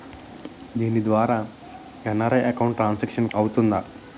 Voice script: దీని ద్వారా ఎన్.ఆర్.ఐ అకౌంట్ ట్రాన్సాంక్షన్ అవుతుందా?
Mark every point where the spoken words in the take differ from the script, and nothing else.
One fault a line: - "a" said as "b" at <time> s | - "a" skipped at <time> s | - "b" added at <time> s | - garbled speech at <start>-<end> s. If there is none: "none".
none